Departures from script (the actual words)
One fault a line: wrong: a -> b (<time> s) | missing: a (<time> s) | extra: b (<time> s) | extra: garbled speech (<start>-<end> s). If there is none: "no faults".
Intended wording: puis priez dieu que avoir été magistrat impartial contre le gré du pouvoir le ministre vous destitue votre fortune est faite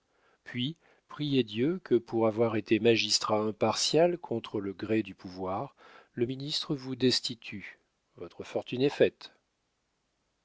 extra: pour (1.9 s)